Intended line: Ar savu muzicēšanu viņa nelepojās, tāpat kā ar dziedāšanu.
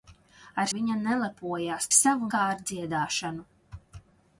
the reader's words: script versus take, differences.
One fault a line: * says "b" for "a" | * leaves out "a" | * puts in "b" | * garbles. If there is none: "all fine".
* leaves out "savu muzicēšanu"
* says "savu" for "tāpat"